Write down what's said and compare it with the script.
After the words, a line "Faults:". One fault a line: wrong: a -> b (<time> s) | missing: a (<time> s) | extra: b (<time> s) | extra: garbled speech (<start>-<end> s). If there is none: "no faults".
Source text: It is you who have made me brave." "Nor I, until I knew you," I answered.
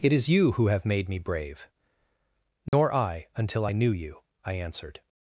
It is you who have made me brave." "Nor I, until I knew you," I answered.
Faults:
no faults